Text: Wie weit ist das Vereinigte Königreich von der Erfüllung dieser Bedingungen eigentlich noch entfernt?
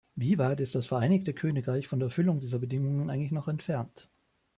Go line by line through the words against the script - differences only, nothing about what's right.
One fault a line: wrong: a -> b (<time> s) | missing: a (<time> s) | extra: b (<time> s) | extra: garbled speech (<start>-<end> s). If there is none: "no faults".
no faults